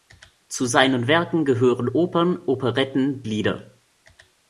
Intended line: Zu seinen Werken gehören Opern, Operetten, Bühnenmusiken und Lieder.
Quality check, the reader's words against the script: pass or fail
fail